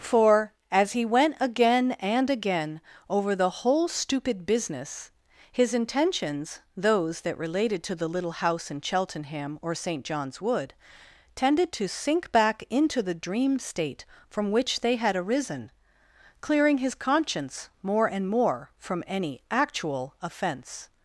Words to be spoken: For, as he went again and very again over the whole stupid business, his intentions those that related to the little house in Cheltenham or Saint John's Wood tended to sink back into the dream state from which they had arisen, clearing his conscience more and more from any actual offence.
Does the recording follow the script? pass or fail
fail